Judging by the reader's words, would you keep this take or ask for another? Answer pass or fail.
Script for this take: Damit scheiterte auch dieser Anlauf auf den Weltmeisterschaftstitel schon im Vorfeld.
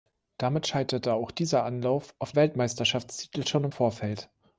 fail